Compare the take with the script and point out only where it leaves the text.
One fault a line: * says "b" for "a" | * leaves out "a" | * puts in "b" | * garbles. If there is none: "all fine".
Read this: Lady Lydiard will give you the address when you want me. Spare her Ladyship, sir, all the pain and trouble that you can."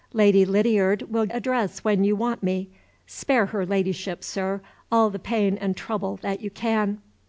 * leaves out "give you the"